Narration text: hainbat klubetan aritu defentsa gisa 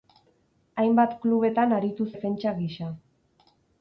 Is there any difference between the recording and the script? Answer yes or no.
no